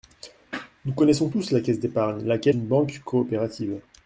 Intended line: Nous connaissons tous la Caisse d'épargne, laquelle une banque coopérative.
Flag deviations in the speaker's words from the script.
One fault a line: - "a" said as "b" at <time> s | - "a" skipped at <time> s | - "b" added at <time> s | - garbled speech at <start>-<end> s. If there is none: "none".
none